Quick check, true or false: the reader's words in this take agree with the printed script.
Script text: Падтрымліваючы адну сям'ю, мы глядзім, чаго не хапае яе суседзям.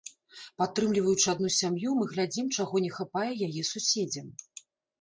true